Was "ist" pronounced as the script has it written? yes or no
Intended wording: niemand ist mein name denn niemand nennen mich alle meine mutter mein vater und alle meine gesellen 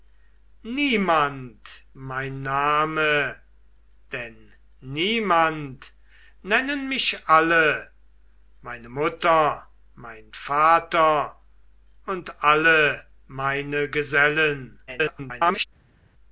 no